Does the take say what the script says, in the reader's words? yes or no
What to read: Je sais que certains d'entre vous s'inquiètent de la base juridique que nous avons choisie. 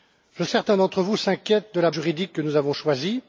no